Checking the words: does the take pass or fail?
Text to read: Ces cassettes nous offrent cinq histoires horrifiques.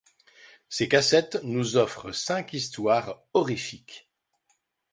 pass